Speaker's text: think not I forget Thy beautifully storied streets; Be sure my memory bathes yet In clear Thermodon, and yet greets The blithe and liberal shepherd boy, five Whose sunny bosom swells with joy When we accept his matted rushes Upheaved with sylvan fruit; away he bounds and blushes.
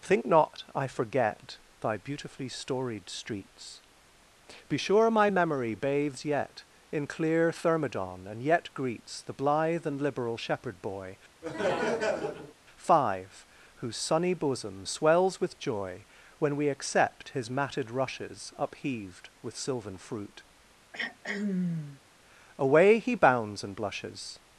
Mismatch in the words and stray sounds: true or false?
true